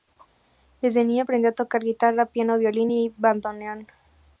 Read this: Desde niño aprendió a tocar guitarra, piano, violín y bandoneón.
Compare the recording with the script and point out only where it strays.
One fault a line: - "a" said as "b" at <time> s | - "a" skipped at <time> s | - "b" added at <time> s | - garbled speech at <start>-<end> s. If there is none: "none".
none